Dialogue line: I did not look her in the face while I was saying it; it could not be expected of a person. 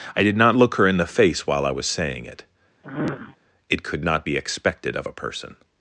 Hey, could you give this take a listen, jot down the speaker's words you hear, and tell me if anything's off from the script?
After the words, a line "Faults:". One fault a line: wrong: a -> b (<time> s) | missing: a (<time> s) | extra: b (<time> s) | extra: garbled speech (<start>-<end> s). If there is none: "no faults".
I did not look her in the face while I was saying it; it could not be expected of a person.
Faults:
no faults